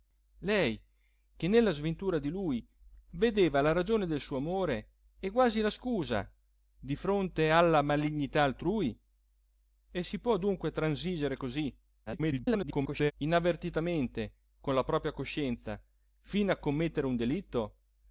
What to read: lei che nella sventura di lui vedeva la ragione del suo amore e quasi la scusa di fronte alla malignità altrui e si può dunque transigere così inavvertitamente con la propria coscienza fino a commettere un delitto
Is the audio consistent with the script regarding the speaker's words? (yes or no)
no